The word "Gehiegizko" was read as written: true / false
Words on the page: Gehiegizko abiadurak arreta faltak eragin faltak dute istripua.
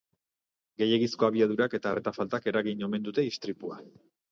true